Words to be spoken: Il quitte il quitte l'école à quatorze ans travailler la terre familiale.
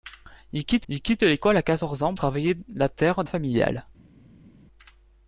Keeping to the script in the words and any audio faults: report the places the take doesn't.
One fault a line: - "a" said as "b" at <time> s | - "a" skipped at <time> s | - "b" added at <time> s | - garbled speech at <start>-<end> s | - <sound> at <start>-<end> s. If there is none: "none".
none